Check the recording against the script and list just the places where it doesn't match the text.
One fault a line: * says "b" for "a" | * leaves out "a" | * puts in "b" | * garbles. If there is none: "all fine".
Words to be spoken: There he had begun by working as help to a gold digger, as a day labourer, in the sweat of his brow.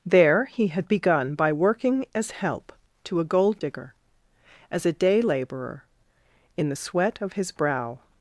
all fine